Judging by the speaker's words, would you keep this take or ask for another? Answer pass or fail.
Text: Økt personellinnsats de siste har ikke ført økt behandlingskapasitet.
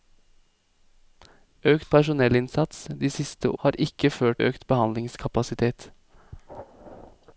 pass